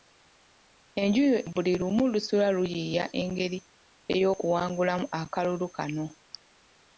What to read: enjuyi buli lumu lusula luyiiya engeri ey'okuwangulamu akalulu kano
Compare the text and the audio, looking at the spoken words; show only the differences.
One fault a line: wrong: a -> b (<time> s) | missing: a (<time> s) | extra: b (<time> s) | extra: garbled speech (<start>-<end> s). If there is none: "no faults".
no faults